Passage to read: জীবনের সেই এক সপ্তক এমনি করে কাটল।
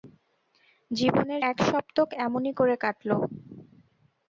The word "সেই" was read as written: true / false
false